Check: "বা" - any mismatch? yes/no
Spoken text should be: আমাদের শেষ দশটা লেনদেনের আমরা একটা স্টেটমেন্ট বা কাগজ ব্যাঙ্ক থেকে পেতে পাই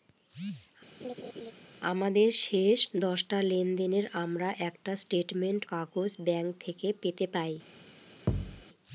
yes